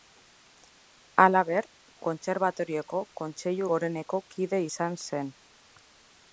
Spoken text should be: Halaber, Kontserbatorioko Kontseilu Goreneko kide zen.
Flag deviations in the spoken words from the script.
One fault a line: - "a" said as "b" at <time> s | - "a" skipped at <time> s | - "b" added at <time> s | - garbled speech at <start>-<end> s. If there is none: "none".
- "izan" added at 4.7 s